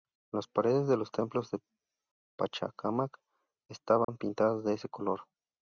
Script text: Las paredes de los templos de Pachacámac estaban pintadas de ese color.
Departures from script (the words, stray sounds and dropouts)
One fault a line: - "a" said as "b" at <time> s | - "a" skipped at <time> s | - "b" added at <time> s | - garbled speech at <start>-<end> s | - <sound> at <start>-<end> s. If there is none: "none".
- dropout at 4.0-4.1 s